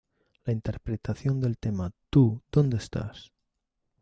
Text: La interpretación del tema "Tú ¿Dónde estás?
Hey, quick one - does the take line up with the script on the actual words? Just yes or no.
yes